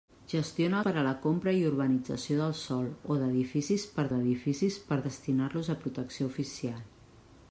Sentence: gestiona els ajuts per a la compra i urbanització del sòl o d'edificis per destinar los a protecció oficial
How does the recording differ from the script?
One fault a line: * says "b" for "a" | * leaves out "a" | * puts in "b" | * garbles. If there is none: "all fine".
* leaves out "els ajuts"
* puts in "d'edificis per"